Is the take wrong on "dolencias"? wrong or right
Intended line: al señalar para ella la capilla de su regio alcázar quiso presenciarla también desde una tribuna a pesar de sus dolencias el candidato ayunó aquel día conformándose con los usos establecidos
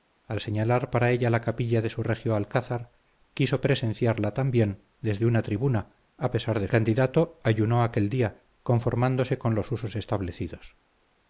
wrong